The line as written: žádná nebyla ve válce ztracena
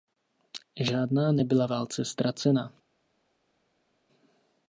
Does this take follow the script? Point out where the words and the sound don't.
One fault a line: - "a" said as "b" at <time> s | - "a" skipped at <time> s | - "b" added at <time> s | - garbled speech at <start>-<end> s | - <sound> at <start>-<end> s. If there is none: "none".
- "ve" skipped at 1.7 s